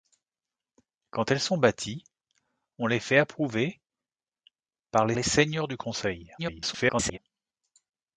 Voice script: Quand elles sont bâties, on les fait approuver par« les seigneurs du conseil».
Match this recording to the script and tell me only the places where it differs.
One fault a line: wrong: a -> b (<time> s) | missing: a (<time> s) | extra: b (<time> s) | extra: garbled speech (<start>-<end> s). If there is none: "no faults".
extra: les (5.1 s)
extra: garbled speech (6.4-7.2 s)